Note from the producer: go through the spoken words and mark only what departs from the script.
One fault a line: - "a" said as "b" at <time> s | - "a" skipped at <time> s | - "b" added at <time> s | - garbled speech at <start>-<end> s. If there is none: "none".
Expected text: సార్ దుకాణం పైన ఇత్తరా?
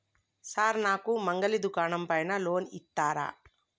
- "నాకు మంగలి" added at 0.8 s
- "లోన్" added at 2.4 s